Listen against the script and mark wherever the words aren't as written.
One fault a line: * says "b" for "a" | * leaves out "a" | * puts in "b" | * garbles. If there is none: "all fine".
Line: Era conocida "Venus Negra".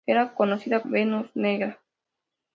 all fine